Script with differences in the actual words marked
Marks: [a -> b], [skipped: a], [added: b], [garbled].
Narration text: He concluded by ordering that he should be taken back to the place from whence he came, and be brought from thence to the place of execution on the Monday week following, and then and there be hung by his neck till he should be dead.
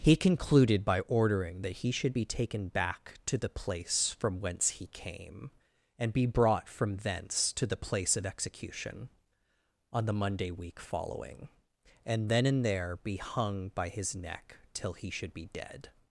He concluded by ordering that he should be taken back to the place from whence he came, and be brought from thence to the place of execution on the Monday week following, and then and there be hung by his neck till he should be dead.